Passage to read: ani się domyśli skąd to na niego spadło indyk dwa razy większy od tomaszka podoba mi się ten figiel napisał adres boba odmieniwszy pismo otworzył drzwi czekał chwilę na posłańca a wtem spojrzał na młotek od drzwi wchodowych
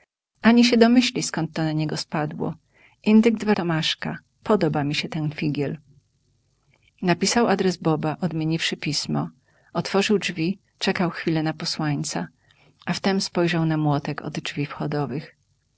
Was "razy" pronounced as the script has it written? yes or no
no